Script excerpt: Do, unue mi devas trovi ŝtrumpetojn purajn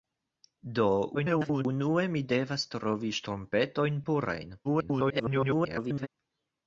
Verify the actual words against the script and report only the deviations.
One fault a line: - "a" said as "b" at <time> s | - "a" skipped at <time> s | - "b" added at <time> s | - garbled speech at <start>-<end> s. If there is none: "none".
- garbled speech at 1.1-1.7 s
- garbled speech at 4.6-6.1 s